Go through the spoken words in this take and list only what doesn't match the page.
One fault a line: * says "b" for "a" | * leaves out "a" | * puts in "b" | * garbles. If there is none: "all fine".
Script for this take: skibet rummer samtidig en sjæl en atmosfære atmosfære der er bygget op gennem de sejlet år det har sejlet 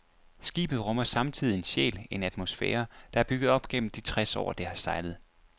* leaves out "atmosfære"
* says "tres" for "sejlet"